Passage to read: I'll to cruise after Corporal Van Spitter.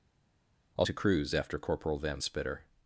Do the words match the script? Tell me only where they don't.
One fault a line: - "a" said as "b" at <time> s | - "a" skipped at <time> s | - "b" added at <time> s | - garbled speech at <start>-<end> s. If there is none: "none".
none